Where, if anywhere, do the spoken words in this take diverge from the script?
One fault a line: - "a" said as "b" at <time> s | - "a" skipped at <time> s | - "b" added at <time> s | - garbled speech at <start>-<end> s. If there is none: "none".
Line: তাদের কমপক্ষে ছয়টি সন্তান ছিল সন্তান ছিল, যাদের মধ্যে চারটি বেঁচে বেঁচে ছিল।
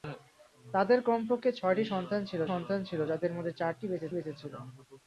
none